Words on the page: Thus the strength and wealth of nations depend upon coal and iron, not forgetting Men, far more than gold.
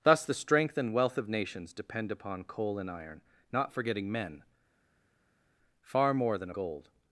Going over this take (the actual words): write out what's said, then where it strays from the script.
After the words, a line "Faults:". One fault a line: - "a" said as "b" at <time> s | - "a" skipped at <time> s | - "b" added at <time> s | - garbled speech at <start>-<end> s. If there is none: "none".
Thus the strength and wealth of nations depend upon coal and iron, not forgetting Men, far more than gold.
Faults:
none